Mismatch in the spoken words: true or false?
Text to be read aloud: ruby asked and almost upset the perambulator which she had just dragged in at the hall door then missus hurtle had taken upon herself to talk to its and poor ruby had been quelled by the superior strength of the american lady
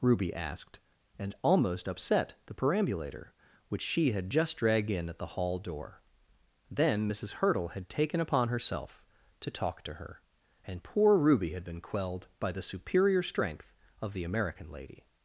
true